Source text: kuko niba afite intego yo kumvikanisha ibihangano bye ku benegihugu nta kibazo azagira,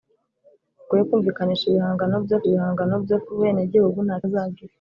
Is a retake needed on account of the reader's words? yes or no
yes